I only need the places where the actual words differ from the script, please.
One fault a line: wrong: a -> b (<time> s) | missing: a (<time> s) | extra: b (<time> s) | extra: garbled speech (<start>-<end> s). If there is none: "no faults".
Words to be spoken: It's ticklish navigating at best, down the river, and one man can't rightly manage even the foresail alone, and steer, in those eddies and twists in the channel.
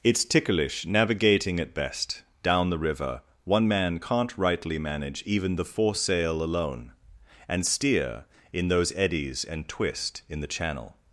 missing: and (3.2 s)
wrong: twists -> twist (9.7 s)